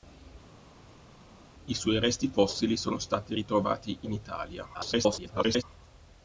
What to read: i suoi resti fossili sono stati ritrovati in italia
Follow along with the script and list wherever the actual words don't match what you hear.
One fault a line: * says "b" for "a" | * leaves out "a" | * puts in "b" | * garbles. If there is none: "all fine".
* garbles